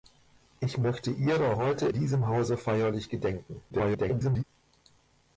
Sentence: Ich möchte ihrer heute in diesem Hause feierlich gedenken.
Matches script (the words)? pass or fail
fail